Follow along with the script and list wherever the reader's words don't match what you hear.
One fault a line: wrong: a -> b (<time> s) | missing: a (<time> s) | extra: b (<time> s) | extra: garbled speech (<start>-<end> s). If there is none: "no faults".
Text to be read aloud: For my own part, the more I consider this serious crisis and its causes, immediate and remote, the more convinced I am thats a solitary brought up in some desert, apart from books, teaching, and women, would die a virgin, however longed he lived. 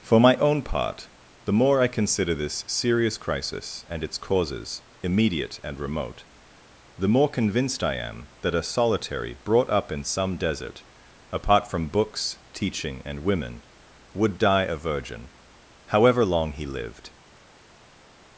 wrong: thats -> that (8.4 s)
wrong: longed -> long (16.2 s)